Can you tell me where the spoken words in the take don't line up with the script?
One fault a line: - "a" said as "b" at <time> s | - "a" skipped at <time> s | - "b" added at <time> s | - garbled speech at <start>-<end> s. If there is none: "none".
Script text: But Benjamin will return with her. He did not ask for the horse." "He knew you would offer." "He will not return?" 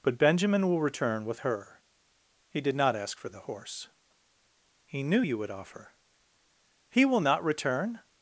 none